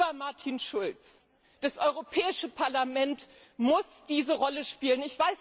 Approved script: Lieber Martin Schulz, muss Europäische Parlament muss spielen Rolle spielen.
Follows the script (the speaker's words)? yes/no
no